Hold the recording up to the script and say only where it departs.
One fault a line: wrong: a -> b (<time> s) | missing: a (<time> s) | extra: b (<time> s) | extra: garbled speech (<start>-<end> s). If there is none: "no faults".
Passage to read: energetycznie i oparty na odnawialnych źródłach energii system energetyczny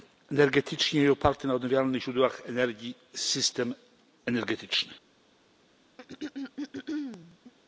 no faults